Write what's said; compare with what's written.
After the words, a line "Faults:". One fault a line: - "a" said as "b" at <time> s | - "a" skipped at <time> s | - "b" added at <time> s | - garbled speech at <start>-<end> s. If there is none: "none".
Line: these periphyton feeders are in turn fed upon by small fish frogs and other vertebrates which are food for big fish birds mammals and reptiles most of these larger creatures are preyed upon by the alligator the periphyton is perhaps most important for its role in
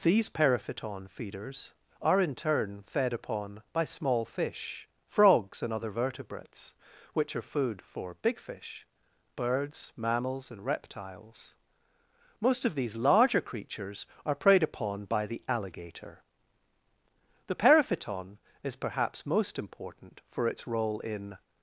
these periphyton feeders are in turn fed upon by small fish frogs and other vertebrates which are food for big fish birds mammals and reptiles most of these larger creatures are preyed upon by the alligator the periphyton is perhaps most important for its role in
Faults:
none